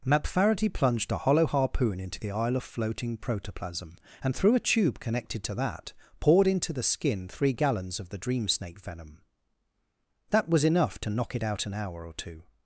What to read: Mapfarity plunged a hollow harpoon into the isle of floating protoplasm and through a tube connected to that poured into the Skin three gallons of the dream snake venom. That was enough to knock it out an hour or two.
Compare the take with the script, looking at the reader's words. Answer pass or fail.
pass